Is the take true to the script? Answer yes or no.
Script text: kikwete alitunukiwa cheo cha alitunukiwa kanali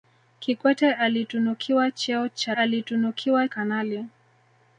yes